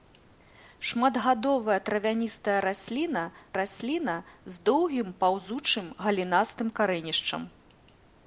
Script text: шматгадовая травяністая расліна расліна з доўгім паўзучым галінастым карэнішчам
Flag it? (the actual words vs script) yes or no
no